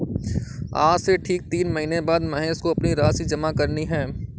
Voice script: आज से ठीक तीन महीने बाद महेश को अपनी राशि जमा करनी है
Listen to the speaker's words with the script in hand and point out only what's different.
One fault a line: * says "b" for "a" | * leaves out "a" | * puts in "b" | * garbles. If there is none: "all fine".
all fine